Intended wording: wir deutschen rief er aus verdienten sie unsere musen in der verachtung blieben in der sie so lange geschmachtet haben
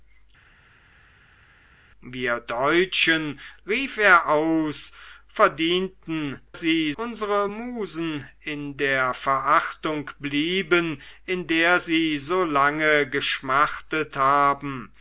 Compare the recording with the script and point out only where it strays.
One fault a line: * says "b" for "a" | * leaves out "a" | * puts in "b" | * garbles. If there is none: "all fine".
all fine